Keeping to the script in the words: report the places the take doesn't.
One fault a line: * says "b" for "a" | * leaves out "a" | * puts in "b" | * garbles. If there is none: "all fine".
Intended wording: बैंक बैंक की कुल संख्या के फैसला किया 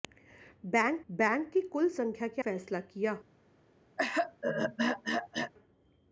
all fine